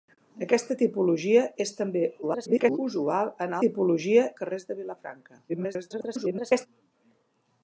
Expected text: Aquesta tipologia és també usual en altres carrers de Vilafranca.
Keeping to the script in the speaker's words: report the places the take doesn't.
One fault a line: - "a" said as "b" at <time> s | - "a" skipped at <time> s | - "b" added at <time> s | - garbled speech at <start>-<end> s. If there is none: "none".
- garbled speech at 2.2-2.8 s
- "altres" said as "tipologia" at 3.6 s
- garbled speech at 5.5-6.7 s